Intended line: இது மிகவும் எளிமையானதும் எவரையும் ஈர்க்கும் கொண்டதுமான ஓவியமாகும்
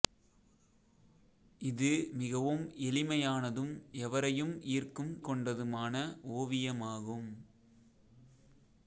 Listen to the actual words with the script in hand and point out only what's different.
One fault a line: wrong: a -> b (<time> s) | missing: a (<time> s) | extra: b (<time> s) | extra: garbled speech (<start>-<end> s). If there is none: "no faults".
no faults